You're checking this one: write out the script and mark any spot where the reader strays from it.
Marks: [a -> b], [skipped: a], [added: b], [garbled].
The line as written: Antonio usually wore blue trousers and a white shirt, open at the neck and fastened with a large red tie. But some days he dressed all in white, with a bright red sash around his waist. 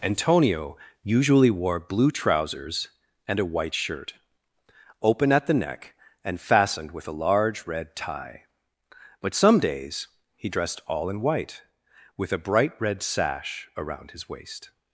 Antonio usually wore blue trousers and a white shirt, open at the neck and fastened with a large red tie. But some days he dressed all in white, with a bright red sash around his waist.